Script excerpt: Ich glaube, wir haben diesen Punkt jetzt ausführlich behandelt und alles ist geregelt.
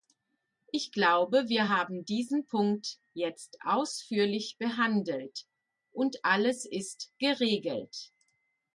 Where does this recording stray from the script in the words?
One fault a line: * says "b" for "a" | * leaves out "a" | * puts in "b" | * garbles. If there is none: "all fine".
all fine